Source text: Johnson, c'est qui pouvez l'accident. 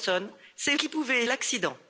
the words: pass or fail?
pass